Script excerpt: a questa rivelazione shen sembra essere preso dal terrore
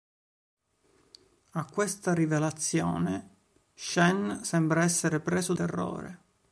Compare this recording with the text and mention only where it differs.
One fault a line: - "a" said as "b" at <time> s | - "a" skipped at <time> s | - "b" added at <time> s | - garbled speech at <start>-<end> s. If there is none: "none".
- "dal" skipped at 5.5 s